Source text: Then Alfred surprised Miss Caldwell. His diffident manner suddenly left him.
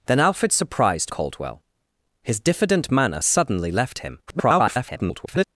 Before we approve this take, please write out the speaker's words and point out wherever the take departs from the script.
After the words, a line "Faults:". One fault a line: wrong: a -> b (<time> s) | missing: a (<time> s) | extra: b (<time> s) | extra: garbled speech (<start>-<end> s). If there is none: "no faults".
Then Alfred surprised Caldwell. His diffident manner suddenly left him. [garbled]
Faults:
missing: Miss (1.1 s)
extra: garbled speech (4.3-5.4 s)